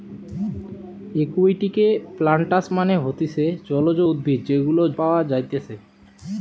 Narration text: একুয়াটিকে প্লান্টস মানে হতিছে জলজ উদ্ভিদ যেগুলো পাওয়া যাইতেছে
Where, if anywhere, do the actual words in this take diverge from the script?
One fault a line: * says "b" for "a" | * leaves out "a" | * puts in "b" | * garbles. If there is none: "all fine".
all fine